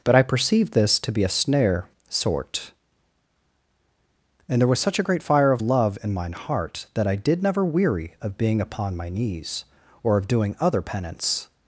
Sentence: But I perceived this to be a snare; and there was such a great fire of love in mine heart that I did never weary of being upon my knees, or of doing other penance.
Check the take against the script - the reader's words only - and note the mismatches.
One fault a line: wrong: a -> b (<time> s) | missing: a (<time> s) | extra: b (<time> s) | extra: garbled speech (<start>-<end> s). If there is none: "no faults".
extra: sort (2.1 s)